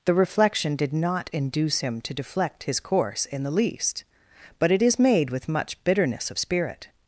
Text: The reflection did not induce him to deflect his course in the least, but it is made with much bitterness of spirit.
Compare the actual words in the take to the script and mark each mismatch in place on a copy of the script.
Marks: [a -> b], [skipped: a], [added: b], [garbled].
The reflection did not induce him to deflect his course in the least, but it is made with much bitterness of spirit.